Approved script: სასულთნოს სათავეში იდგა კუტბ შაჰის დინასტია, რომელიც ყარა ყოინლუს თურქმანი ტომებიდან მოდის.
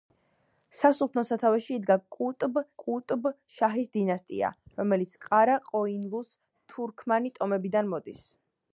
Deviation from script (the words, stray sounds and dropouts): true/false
true